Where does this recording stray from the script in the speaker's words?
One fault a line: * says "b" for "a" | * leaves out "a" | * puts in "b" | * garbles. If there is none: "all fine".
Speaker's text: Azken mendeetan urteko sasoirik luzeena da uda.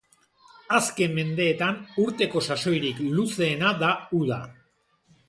all fine